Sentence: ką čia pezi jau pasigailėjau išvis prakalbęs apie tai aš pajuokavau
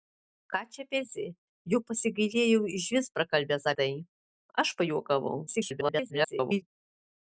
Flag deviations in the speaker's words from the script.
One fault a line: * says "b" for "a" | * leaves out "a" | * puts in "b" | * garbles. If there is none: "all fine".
* leaves out "apie"
* garbles